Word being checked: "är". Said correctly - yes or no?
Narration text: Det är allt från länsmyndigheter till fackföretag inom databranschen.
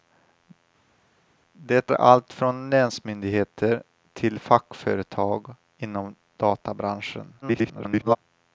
no